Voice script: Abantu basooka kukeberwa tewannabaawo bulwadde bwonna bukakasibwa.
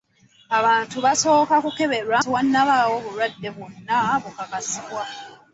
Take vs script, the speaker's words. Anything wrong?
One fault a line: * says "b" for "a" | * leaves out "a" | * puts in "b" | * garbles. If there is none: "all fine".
all fine